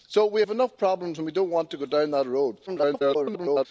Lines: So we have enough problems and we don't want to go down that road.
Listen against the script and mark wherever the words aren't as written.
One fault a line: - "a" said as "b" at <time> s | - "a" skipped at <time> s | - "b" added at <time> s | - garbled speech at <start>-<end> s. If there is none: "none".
- garbled speech at 2.7-3.7 s